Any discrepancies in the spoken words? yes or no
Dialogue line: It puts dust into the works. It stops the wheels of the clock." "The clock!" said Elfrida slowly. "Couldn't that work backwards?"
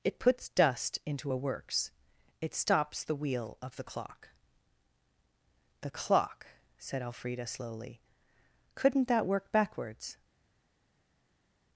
yes